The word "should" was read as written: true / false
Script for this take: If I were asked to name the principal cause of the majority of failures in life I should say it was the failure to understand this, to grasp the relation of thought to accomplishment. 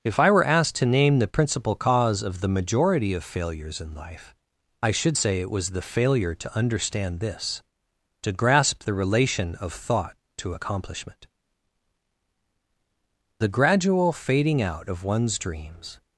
true